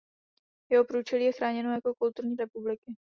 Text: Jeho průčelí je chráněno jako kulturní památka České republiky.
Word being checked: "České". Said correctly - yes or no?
no